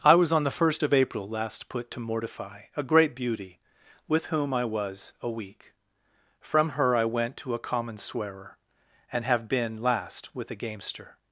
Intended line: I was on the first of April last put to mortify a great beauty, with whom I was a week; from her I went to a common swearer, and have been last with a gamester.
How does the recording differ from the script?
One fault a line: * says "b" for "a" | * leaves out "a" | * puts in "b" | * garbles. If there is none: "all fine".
all fine